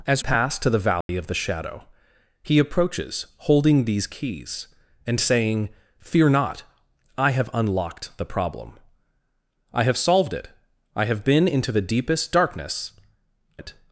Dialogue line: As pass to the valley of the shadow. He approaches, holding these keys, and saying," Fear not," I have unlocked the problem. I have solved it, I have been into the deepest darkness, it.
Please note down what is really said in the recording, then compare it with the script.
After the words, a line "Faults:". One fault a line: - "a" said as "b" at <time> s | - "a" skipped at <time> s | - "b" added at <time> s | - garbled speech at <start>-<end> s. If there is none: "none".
As pass to the valley of the shadow. He approaches, holding these keys, and saying," Fear not," I have unlocked the problem. I have solved it, I have been into the deepest darkness, it.
Faults:
none